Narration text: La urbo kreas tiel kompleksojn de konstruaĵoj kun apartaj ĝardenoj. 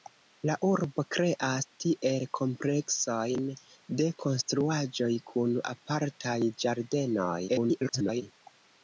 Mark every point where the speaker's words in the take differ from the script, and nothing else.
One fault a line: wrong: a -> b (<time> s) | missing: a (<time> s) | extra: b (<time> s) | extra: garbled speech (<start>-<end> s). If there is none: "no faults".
extra: garbled speech (7.5-8.2 s)